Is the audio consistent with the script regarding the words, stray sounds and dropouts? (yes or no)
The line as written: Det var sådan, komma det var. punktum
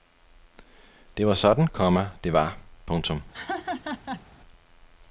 no